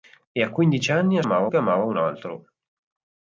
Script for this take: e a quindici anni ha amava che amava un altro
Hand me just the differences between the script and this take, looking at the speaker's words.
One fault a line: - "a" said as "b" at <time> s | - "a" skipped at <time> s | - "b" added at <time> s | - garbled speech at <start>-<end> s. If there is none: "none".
none